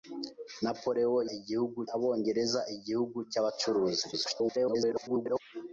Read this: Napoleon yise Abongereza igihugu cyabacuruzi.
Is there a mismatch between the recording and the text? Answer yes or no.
yes